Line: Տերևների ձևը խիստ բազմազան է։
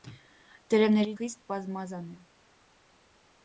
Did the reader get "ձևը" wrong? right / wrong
wrong